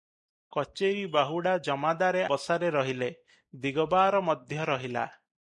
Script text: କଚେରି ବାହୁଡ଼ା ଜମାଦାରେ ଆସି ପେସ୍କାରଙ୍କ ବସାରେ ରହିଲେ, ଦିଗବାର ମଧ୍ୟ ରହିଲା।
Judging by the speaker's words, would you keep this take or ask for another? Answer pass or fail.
fail